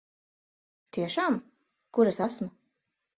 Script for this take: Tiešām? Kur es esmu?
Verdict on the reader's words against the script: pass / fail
pass